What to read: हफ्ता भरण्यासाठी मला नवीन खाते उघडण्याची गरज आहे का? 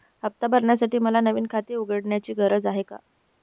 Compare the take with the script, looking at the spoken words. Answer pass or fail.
pass